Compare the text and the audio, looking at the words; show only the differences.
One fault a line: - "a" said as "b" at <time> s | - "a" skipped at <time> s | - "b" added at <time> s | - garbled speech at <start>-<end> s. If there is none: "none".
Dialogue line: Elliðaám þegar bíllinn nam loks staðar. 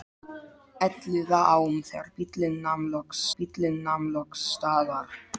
- "bíllinn nam loks" added at 3.4 s